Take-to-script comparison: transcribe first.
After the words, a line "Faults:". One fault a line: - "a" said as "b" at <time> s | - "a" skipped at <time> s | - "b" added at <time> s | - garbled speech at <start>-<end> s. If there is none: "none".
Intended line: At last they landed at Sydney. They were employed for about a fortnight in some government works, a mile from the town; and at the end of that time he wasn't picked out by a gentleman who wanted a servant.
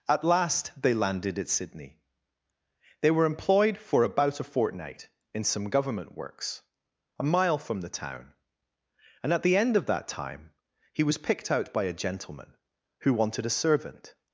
At last they landed at Sydney. They were employed for about a fortnight in some government works, a mile from the town; and at the end of that time he was picked out by a gentleman who wanted a servant.
Faults:
- "wasn't" said as "was" at 11.0 s